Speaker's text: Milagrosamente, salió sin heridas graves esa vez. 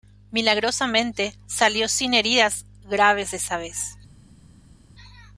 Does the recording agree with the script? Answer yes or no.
yes